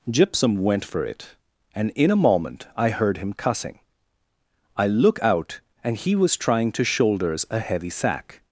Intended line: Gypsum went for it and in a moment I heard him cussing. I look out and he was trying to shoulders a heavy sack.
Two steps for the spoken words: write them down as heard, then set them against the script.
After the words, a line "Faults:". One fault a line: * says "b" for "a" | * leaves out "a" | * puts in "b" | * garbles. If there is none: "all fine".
Gypsum went for it and in a moment I heard him cussing. I look out and he was trying to shoulders a heavy sack.
Faults:
all fine